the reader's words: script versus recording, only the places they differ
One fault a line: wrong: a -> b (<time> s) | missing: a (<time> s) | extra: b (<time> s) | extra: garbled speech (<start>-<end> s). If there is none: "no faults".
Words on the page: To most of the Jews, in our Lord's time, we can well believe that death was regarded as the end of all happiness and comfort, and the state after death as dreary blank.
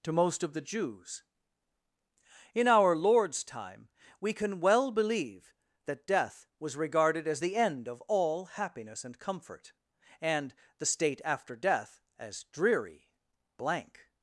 no faults